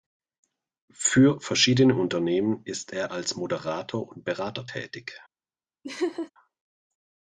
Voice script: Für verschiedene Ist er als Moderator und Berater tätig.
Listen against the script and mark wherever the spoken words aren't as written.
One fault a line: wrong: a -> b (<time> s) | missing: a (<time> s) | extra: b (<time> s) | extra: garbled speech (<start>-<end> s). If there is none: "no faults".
extra: Unternehmen (1.9 s)